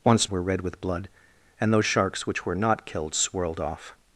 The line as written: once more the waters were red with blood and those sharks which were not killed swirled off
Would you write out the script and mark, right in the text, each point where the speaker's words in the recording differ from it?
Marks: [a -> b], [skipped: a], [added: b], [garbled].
once [skipped: more the waters] were red with blood and those sharks which were not killed swirled off